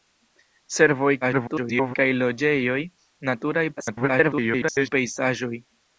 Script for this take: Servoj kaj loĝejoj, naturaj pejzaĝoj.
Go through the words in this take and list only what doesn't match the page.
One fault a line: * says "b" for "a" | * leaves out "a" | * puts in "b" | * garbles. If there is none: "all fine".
* garbles
* garbles